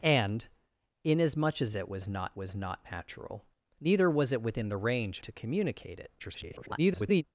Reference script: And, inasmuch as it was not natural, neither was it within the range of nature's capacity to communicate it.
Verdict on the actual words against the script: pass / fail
fail